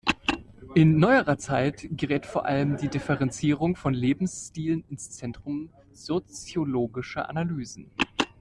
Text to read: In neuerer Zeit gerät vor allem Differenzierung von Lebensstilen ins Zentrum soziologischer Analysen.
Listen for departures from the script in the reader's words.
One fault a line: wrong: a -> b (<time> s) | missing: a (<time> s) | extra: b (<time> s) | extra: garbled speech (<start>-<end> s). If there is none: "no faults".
extra: die (2.8 s)